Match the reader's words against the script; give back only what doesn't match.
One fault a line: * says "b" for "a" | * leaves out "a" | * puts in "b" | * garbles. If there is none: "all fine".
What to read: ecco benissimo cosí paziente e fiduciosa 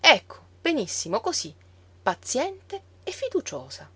all fine